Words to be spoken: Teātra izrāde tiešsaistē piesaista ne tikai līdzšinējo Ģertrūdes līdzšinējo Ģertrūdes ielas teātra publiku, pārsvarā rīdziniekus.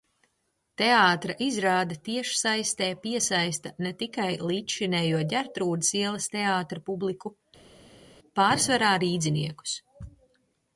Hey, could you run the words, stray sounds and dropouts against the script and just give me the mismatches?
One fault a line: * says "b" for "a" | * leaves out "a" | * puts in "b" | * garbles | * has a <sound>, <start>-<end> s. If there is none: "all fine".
* leaves out "līdzšinējo Ģertrūdes"